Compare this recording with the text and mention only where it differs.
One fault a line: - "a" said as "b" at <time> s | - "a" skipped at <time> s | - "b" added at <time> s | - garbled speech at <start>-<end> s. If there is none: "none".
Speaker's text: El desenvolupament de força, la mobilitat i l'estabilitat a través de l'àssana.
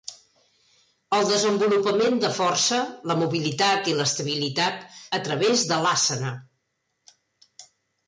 none